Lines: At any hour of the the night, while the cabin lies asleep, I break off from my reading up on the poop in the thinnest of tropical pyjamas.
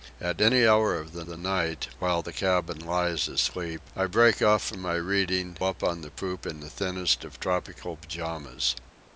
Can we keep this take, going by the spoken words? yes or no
yes